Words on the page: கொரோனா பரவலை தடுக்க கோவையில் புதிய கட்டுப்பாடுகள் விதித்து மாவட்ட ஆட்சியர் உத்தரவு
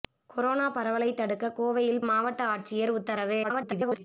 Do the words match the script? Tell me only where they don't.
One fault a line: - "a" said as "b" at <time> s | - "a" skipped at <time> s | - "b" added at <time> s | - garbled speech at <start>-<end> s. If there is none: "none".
- "புதிய கட்டுப்பாடுகள் விதித்து" skipped at 2.0 s
- garbled speech at 3.4-4.0 s